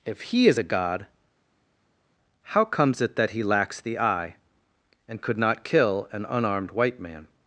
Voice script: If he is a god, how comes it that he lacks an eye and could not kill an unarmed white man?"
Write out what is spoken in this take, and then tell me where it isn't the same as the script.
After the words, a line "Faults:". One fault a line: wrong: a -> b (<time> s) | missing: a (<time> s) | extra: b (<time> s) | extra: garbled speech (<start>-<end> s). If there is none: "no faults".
If he is a god, how comes it that he lacks the eye and could not kill an unarmed white man?"
Faults:
wrong: an -> the (3.8 s)